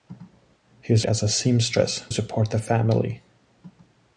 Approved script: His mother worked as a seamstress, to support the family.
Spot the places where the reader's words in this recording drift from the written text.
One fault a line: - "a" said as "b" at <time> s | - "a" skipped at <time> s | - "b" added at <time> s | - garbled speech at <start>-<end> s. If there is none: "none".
- "mother worked" skipped at 1.1 s
- "to" skipped at 2.0 s